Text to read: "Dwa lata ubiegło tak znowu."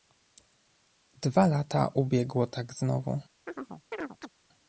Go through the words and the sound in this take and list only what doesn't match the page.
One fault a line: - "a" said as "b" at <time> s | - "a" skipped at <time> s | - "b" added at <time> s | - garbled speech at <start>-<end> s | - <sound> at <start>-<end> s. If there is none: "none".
- chirp at 3.5-4.3 s